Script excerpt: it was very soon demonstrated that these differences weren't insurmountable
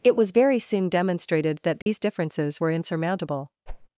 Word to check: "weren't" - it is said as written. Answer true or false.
false